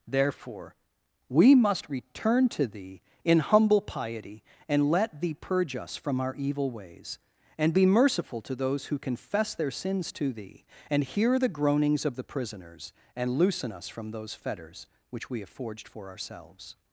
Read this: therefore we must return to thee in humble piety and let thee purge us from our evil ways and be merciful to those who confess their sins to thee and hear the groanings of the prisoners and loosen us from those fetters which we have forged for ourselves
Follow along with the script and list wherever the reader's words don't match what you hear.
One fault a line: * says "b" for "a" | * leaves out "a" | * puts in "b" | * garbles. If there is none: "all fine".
all fine